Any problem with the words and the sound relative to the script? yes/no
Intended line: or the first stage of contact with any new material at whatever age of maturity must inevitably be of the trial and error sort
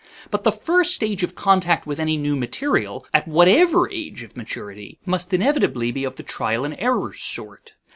yes